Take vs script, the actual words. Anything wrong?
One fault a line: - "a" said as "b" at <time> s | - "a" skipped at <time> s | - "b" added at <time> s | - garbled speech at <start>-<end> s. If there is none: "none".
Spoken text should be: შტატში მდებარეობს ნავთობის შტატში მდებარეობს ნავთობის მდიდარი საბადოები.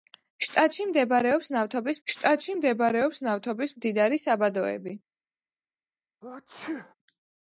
none